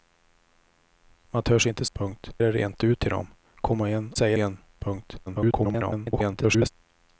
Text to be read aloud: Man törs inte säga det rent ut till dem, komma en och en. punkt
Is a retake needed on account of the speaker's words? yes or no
yes